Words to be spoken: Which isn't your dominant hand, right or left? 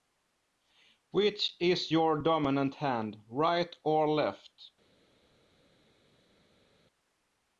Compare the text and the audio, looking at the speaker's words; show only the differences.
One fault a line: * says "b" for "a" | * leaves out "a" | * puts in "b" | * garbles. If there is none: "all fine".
* says "is" for "isn't"